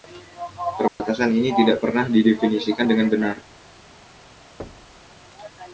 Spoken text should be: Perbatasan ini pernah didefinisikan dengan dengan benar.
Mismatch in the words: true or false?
true